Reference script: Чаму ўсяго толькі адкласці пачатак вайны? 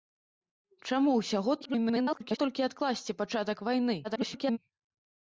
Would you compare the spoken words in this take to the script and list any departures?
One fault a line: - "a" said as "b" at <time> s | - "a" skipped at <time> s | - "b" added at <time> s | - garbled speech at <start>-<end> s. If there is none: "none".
- garbled speech at 1.6-2.4 s
- garbled speech at 4.0-4.6 s